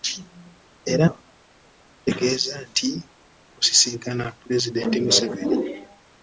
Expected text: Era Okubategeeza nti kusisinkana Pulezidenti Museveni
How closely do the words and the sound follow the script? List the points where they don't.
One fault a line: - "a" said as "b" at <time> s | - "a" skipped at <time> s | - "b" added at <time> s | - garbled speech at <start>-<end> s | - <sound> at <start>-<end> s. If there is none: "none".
none